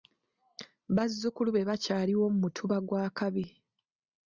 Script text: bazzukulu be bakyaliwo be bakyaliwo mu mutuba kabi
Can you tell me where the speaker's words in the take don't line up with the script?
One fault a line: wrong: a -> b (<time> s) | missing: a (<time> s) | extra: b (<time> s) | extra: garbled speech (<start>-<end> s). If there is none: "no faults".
missing: be bakyaliwo (2.2 s)
extra: gwa (2.9 s)